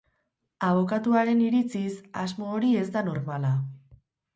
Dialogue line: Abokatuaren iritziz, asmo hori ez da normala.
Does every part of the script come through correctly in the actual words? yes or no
yes